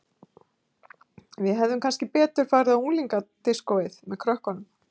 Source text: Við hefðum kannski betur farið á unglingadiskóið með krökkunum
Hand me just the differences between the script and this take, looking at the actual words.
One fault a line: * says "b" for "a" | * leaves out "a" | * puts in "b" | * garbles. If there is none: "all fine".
all fine